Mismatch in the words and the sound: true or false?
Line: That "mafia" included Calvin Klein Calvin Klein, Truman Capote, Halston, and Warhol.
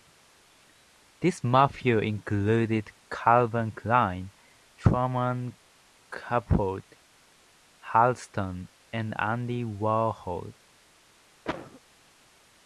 true